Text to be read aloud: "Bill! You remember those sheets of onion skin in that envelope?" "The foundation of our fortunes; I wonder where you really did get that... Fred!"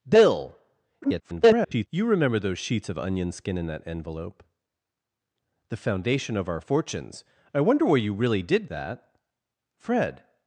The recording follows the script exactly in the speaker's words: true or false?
false